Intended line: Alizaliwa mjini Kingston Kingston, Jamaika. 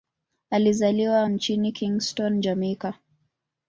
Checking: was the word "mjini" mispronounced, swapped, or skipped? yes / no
no